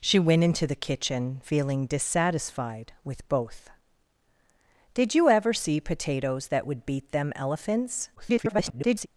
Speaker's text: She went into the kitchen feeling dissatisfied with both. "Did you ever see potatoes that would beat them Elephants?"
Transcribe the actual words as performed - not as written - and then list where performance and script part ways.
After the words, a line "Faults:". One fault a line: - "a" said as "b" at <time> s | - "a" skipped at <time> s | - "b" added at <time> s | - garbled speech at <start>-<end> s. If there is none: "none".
She went into the kitchen feeling dissatisfied with both. "Did you ever see potatoes that would beat them Elephants?" [garbled]
Faults:
- garbled speech at 8.2-9.1 s